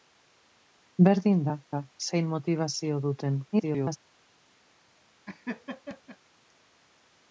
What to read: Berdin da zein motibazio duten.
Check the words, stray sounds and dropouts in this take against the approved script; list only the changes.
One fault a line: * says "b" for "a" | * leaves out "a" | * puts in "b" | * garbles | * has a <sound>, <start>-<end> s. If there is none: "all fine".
* puts in "da"
* garbles
* has a laugh, 5.3-6.2 s